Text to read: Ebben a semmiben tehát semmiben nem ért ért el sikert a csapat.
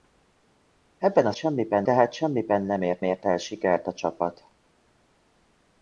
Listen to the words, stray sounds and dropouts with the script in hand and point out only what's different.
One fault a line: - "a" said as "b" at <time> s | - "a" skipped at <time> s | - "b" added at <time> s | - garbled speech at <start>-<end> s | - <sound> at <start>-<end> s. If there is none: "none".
none